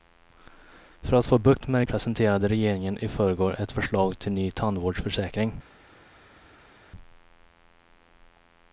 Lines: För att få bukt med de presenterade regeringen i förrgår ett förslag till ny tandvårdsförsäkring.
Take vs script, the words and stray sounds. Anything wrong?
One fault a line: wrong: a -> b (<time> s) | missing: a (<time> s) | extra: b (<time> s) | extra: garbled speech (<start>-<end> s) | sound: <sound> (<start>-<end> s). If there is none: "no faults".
no faults